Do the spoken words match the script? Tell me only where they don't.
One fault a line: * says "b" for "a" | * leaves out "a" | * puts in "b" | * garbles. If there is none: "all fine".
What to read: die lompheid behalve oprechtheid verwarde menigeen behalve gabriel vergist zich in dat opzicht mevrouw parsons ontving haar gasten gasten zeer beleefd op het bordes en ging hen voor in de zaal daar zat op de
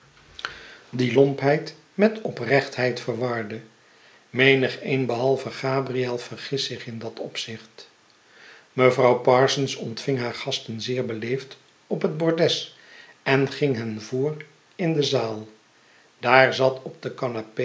* says "met" for "behalve"
* leaves out "gasten"